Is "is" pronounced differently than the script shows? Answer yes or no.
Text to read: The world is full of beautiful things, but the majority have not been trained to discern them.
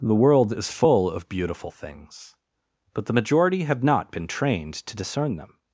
no